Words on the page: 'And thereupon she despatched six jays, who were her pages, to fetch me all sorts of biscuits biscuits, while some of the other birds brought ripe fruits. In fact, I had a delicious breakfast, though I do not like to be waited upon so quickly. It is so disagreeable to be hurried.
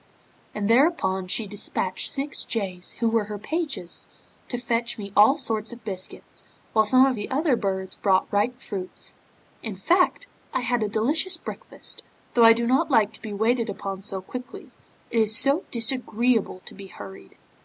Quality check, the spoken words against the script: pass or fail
fail